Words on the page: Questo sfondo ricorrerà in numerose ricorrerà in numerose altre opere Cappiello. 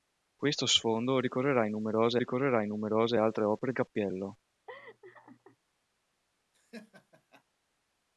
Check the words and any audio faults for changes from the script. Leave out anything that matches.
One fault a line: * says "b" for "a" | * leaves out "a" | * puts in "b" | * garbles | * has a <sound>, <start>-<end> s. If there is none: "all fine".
* has a laugh, 4.7-5.6 s
* has a laugh, 6.5-7.4 s